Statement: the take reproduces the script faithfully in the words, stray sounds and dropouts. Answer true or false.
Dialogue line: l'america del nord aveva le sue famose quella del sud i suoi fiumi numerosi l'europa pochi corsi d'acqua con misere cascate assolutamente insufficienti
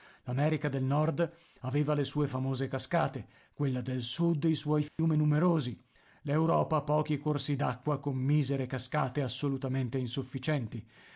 false